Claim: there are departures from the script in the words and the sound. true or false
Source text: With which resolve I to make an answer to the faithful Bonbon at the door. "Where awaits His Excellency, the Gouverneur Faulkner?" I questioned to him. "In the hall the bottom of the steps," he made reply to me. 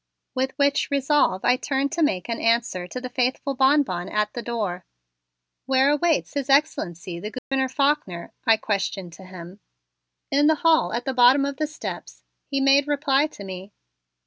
true